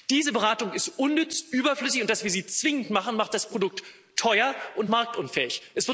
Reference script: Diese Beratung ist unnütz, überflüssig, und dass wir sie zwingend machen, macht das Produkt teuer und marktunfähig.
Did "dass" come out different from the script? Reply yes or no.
no